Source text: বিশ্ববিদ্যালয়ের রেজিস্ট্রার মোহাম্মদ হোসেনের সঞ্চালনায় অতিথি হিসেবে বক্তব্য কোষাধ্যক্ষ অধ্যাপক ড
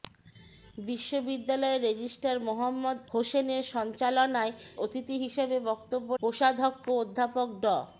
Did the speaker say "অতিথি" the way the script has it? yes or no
yes